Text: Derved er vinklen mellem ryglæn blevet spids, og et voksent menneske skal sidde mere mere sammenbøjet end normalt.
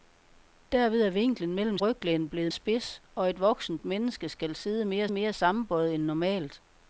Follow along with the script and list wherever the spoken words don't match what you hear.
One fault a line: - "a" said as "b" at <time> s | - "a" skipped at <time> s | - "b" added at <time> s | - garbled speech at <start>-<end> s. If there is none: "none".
none